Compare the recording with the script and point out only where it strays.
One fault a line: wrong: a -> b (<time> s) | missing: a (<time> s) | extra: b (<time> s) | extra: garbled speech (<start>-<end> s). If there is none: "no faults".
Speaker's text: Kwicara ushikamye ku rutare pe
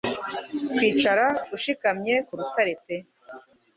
no faults